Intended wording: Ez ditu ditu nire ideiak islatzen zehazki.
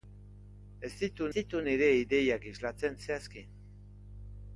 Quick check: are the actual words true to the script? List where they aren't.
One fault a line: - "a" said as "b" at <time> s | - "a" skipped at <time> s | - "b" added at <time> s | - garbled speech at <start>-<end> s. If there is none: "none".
none